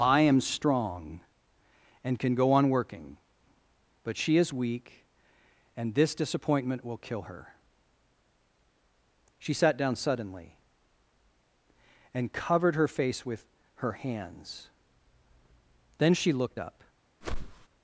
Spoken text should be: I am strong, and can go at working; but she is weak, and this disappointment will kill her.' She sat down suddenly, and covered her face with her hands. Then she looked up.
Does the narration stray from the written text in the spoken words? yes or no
yes